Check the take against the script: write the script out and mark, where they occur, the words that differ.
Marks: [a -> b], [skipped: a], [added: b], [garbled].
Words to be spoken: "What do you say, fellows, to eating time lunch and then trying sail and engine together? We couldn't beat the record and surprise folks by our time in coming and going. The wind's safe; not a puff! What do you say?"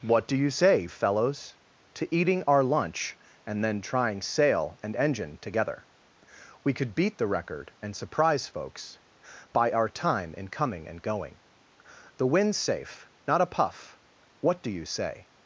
"What do you say, fellows, to eating [time -> our] lunch and then trying sail and engine together? We [couldn't -> could] beat the record and surprise folks by our time in coming and going. The wind's safe; not a puff! What do you say?"